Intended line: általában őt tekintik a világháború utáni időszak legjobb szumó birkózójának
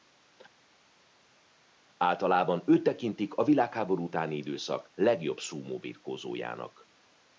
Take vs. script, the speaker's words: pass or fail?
pass